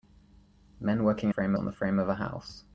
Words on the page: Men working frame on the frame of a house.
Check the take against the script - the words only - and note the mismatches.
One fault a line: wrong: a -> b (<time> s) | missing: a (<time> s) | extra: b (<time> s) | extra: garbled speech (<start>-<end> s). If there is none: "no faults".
no faults